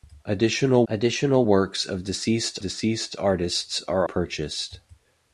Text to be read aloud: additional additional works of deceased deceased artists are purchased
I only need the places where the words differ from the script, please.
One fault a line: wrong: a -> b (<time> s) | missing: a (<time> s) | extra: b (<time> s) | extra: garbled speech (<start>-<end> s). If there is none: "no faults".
no faults